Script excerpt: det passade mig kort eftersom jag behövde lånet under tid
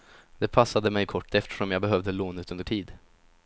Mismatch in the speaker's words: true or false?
false